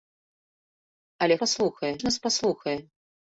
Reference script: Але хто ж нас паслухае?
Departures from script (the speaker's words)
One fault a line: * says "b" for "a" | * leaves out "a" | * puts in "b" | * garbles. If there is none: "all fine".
* says "паслухае" for "хто"